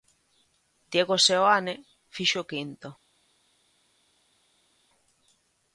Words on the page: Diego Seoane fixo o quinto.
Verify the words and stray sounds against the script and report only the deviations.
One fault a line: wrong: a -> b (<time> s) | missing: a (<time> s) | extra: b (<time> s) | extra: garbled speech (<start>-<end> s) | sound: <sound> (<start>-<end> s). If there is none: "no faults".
no faults